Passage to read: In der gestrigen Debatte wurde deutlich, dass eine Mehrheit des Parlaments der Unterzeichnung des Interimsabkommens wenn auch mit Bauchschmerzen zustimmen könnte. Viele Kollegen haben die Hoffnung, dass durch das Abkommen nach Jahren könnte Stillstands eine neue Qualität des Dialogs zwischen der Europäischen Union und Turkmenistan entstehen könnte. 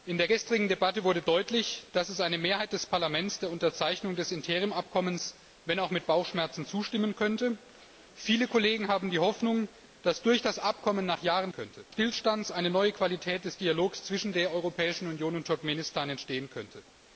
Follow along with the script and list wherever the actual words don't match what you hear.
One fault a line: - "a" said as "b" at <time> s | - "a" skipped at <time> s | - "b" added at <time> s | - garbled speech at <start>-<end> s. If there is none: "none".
none